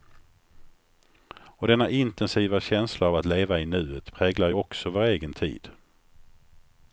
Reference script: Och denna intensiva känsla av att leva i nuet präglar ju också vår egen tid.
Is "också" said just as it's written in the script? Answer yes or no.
yes